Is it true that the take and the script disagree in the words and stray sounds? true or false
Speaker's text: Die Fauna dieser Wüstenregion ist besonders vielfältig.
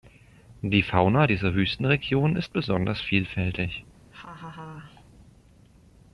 true